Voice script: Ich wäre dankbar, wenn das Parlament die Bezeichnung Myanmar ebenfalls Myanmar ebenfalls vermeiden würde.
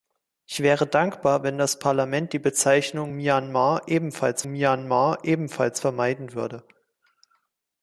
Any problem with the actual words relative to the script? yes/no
no